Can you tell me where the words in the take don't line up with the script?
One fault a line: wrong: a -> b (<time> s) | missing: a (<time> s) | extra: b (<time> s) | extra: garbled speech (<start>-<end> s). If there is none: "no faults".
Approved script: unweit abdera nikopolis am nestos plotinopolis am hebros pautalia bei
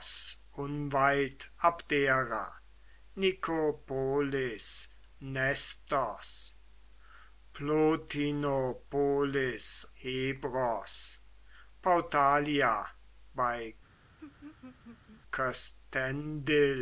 missing: am (4.9 s)
missing: am (9.8 s)